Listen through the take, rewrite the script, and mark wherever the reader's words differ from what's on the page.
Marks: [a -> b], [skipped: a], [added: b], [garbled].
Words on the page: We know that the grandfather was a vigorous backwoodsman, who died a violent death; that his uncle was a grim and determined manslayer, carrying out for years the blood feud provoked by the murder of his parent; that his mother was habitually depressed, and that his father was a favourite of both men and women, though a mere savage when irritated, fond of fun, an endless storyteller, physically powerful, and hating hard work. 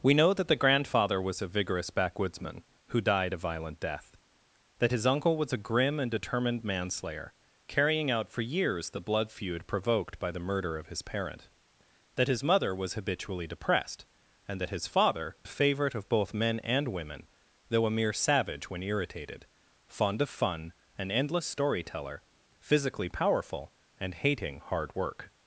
We know that the grandfather was a vigorous backwoodsman, who died a violent death; that his uncle was a grim and determined manslayer, carrying out for years the blood feud provoked by the murder of his parent; that his mother was habitually depressed, and that his father [skipped: was] a favourite of both men and women, though a mere savage when irritated, fond of fun, an endless storyteller, physically powerful, and hating hard work.